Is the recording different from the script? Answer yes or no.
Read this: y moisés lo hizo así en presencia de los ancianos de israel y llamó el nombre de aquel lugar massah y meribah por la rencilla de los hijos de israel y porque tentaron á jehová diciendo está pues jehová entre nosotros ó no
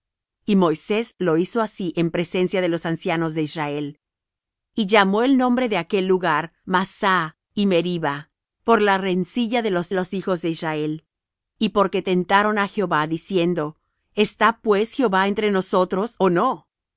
yes